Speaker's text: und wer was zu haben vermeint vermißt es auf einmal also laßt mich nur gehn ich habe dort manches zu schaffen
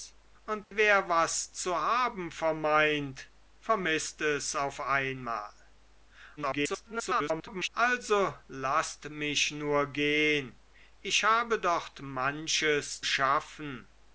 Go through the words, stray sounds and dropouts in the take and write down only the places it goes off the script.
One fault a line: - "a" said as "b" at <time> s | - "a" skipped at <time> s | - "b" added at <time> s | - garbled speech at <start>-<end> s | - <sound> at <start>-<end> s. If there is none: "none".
- dropout at 0.6-0.7 s
- garbled speech at 6.4-7.7 s
- "zu" skipped at 13.1 s